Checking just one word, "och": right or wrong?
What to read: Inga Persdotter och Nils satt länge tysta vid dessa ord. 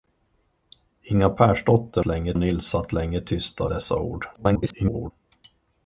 wrong